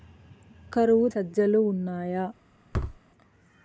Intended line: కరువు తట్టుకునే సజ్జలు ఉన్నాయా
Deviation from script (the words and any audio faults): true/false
true